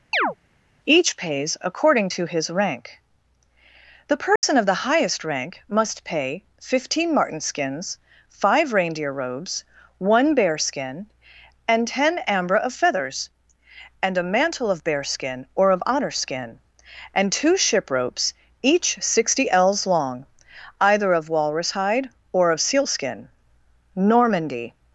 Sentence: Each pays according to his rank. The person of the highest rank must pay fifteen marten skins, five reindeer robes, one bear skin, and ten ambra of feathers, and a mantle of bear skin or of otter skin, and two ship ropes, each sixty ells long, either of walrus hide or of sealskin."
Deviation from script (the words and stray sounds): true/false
true